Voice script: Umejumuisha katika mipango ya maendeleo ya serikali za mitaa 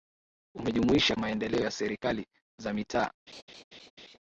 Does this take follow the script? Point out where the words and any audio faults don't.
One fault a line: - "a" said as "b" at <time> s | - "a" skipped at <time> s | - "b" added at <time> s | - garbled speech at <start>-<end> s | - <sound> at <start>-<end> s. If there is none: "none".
- "katika mipango ya" skipped at 1.1 s
- laugh at 3.3-4.2 s